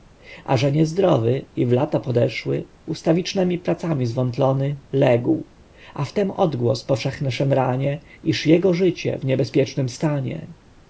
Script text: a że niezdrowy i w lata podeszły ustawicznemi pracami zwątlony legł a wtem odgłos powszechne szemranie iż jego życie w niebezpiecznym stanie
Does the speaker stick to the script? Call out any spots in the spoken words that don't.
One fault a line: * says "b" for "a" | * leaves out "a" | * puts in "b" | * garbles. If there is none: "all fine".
all fine